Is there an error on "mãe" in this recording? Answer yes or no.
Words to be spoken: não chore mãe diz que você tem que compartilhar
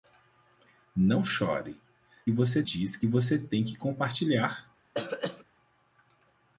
yes